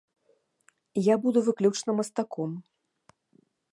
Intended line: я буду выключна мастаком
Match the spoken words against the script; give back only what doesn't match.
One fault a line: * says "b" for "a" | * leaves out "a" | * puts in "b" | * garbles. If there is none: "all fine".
all fine